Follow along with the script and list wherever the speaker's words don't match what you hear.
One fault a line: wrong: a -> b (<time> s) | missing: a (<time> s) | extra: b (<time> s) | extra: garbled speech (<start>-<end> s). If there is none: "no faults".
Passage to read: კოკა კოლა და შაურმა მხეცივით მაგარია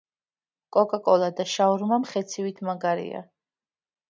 no faults